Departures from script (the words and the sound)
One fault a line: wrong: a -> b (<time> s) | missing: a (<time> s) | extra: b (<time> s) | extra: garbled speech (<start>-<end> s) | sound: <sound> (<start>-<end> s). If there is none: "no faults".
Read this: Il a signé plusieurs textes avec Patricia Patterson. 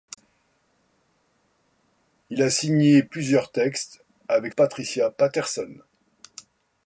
no faults